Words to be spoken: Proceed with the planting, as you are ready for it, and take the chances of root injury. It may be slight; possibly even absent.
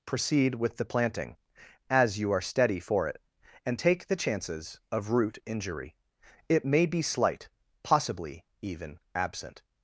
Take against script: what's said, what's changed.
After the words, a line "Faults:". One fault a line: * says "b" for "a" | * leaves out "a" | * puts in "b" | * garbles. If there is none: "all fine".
Proceed with the planting, as you are steady for it, and take the chances of root injury. It may be slight; possibly even absent.
Faults:
* says "steady" for "ready"